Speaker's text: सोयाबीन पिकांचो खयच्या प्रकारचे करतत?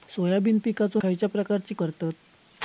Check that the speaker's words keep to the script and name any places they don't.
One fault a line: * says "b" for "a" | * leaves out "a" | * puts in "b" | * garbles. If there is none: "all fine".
all fine